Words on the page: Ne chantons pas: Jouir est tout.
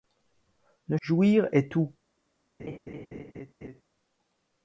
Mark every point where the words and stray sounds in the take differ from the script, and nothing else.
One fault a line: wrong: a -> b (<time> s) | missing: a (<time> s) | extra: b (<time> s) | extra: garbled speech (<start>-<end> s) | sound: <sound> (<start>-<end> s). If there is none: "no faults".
missing: chantons pas (1.0 s)
sound: laugh (2.6-3.8 s)